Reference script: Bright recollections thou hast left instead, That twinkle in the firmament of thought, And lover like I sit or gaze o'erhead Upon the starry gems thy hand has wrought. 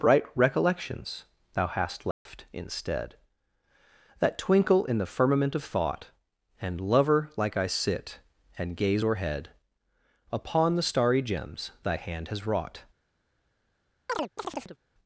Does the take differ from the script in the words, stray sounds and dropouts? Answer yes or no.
yes